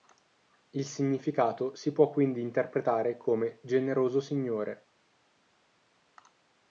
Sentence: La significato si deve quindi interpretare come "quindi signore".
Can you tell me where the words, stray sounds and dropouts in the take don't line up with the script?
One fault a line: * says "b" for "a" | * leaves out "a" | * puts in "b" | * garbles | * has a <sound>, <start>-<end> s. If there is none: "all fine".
* says "Il" for "La"
* says "può" for "deve"
* says "generoso" for "quindi"